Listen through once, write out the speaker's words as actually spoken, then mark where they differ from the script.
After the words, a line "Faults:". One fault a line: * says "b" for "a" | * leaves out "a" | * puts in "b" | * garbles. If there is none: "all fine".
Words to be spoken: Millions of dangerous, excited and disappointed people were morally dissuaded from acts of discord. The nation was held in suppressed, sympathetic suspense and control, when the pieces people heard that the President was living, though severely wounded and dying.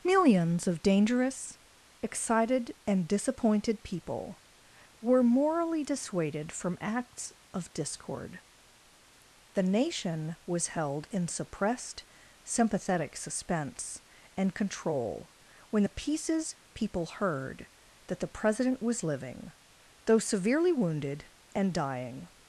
Millions of dangerous, excited and disappointed people were morally dissuaded from acts of discord. The nation was held in suppressed, sympathetic suspense and control, when the pieces people heard that the President was living, though severely wounded and dying.
Faults:
all fine